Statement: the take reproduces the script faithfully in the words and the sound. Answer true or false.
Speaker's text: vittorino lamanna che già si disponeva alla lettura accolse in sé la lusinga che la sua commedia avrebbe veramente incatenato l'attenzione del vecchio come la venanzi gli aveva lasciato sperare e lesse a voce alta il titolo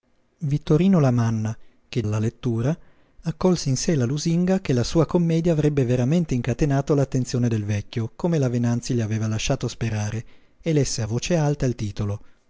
false